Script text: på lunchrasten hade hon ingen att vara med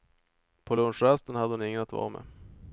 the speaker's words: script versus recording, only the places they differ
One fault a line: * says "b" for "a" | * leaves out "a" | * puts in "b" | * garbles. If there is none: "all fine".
all fine